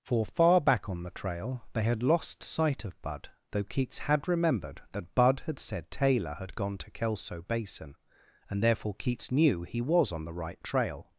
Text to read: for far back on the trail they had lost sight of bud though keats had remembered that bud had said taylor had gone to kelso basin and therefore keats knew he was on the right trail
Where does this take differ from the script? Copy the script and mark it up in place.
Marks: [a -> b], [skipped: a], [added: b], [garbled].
for far back on the trail they had lost sight of bud though keats had remembered that bud had said taylor had gone to kelso basin and therefore keats knew he was on the right trail